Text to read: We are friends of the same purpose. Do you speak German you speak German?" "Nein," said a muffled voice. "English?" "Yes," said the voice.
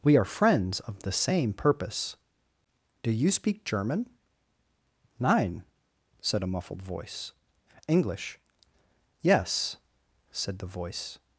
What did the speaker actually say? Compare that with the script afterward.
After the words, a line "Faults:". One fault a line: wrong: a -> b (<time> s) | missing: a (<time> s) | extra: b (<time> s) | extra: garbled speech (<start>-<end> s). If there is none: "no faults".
We are friends of the same purpose. Do you speak German?" "Nein," said a muffled voice. "English?" "Yes," said the voice.
Faults:
missing: you speak German (4.1 s)